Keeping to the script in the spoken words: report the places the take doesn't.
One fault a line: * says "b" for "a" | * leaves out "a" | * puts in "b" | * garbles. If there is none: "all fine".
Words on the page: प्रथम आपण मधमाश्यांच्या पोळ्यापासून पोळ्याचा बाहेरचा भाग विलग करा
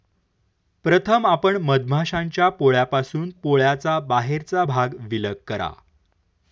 all fine